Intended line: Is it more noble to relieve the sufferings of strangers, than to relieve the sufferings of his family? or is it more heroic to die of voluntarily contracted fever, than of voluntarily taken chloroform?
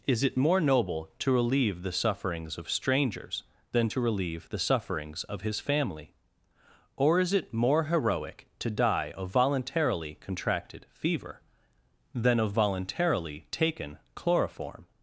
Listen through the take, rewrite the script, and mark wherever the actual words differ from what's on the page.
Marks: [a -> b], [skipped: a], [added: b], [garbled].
Is it more noble to relieve the sufferings of strangers, than to relieve the sufferings of his family? or is it more heroic to die of voluntarily contracted fever, than of voluntarily taken chloroform?